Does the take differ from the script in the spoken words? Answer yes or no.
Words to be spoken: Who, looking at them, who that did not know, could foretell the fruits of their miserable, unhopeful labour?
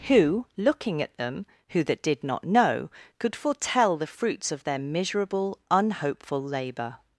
no